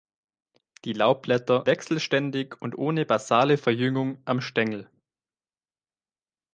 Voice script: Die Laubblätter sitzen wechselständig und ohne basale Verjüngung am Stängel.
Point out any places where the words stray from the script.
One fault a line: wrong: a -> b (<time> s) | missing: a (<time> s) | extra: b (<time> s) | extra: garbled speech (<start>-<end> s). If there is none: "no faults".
missing: sitzen (1.7 s)